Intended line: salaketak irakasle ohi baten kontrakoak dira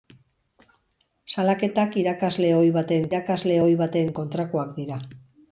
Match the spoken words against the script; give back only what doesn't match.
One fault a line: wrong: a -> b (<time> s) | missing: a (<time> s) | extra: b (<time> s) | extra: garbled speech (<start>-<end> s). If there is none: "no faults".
extra: irakasle ohi baten (3.1 s)